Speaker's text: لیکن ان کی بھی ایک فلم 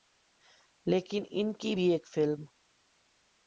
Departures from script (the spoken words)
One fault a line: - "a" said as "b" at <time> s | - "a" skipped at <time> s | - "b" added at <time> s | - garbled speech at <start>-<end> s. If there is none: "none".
none